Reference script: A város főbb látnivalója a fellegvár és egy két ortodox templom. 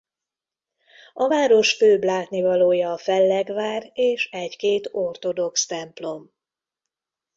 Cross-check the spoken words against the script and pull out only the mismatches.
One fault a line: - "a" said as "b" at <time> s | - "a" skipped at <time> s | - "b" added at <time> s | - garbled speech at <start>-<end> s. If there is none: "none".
none